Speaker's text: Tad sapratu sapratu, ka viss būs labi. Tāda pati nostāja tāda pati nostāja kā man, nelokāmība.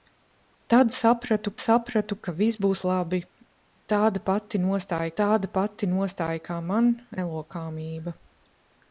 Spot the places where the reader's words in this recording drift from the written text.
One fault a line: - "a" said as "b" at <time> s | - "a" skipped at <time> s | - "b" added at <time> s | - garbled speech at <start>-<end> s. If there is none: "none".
none